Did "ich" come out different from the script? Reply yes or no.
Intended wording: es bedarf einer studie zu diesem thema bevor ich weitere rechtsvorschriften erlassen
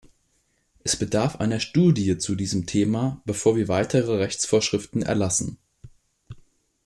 yes